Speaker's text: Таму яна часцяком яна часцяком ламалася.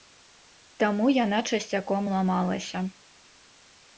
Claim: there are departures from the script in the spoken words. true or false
true